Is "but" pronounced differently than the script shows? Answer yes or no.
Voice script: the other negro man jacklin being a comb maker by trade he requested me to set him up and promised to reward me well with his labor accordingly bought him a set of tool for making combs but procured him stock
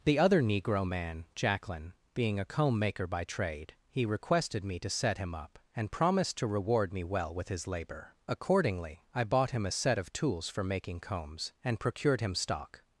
yes